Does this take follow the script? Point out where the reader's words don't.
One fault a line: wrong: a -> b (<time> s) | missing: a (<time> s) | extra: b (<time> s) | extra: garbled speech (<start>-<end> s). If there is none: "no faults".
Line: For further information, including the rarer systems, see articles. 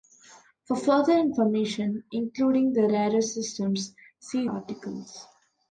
no faults